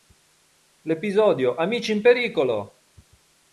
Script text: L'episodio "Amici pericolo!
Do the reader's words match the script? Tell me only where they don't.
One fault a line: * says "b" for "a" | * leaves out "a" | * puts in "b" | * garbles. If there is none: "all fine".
* puts in "in"